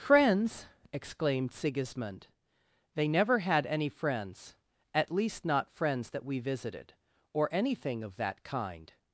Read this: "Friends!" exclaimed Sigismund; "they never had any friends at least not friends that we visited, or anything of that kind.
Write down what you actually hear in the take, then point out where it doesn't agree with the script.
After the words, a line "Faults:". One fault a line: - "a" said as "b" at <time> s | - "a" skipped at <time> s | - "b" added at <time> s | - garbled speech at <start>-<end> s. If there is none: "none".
"Friends!" exclaimed Sigismund; "they never had any friends at least not friends that we visited, or anything of that kind.
Faults:
none